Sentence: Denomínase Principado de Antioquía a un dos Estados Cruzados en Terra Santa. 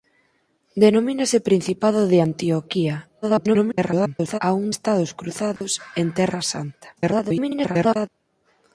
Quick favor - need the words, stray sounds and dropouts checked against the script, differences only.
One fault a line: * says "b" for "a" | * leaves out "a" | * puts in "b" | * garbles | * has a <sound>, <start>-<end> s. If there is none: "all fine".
* garbles
* leaves out "dos"
* has a dropout, 5.6-5.6 s
* garbles